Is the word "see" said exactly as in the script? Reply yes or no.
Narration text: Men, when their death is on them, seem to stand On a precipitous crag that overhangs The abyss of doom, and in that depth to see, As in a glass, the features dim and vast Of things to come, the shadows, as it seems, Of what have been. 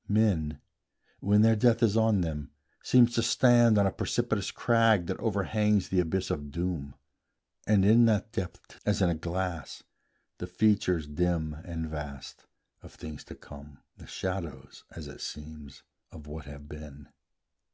no